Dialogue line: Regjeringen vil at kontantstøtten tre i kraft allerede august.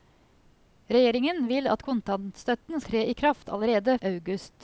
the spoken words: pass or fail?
pass